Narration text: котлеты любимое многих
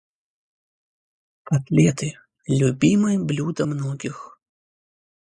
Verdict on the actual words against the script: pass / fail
fail